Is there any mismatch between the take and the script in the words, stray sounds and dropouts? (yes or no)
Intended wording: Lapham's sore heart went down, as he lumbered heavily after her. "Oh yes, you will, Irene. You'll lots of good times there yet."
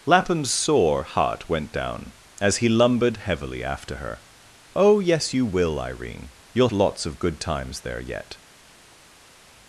no